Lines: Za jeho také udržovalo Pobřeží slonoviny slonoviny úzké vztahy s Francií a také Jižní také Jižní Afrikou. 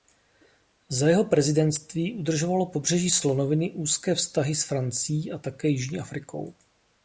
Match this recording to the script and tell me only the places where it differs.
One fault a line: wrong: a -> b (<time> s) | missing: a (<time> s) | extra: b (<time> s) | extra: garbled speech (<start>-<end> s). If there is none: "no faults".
wrong: také -> prezidentství (1.2 s)
missing: slonoviny (3.7 s)
missing: také Jižní (6.0 s)